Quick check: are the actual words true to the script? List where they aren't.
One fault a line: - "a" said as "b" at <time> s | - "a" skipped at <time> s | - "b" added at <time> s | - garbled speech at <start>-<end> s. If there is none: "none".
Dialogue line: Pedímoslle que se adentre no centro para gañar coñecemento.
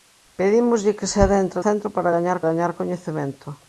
- "no" skipped at 1.6 s
- "gañar" added at 2.5 s